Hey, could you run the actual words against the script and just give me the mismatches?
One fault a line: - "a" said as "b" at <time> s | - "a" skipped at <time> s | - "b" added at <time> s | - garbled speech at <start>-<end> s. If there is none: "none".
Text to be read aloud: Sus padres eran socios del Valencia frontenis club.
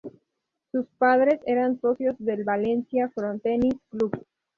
none